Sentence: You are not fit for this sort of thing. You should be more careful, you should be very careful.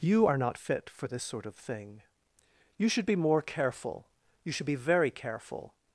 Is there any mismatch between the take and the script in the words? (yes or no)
no